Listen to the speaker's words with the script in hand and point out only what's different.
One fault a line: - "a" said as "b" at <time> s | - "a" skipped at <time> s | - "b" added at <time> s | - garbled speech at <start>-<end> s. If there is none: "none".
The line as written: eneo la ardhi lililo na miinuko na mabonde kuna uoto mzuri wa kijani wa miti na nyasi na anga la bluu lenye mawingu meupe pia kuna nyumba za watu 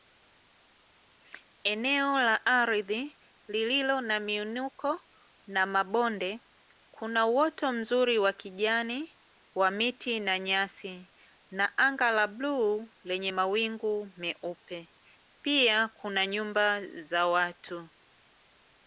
none